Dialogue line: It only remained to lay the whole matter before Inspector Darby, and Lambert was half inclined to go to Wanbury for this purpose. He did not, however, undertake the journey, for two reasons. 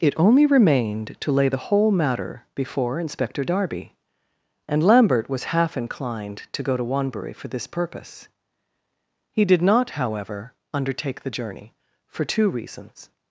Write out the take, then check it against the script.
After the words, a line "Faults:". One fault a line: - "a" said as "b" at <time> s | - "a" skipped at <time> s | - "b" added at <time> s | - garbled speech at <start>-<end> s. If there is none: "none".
It only remained to lay the whole matter before Inspector Darby, and Lambert was half inclined to go to Wanbury for this purpose. He did not, however, undertake the journey, for two reasons.
Faults:
none